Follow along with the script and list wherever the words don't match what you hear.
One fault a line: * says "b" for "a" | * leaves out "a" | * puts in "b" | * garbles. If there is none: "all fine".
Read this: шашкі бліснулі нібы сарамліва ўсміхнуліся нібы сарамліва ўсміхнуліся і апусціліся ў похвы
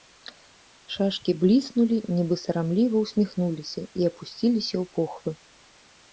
* leaves out "нібы сарамліва ўсміхнуліся"